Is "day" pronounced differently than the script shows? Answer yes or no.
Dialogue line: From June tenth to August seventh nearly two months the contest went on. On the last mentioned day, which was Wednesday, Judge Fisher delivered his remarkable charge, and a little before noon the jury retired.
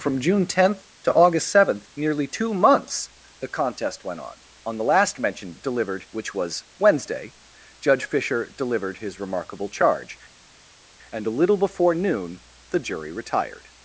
yes